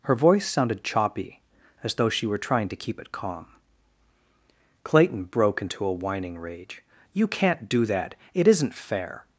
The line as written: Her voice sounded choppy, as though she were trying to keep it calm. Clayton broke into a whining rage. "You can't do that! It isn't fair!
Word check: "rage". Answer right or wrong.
right